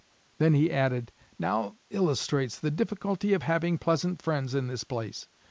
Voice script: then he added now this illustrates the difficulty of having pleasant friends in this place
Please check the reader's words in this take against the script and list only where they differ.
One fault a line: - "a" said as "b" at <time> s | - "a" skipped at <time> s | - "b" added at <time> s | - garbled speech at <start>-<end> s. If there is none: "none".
- "this" skipped at 1.8 s